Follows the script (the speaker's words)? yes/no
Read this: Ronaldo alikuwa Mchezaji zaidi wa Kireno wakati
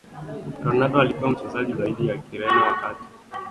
yes